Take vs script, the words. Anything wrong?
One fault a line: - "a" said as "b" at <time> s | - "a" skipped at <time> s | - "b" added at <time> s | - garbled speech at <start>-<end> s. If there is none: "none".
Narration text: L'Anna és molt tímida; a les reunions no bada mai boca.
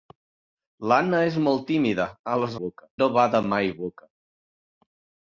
- "reunions" said as "boca" at 2.6 s